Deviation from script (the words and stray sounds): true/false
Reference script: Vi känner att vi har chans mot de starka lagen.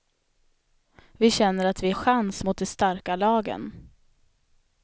true